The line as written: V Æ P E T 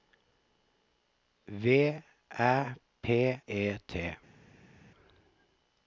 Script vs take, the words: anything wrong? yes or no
no